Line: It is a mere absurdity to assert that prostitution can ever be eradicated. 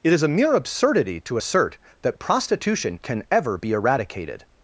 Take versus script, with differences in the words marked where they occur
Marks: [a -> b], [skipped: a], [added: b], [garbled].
It is a mere absurdity to assert that prostitution can ever be eradicated.